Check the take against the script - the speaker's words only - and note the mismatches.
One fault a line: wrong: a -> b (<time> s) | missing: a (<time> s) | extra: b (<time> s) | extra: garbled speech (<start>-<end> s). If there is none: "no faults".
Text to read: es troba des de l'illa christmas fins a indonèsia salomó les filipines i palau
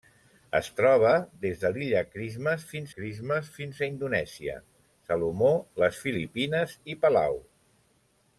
extra: christmas fins (3.0 s)